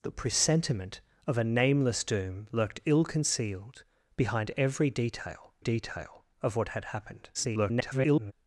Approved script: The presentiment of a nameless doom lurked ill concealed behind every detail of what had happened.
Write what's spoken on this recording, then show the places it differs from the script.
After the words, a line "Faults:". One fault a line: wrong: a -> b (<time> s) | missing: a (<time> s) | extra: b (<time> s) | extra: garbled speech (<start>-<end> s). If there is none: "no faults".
The presentiment of a nameless doom lurked ill concealed behind every detail detail of what had happened. [garbled]
Faults:
extra: detail (5.6 s)
extra: garbled speech (7.3-8.3 s)